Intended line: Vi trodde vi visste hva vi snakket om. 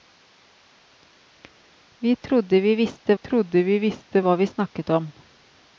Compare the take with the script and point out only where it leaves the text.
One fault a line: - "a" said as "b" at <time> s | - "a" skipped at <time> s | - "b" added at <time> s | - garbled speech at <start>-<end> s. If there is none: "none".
- "trodde vi visste" added at 3.1 s